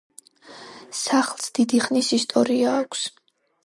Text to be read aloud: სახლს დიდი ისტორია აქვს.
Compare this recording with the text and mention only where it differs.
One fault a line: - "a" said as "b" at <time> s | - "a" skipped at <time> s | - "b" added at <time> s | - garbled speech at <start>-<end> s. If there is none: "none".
- "ხნის" added at 1.9 s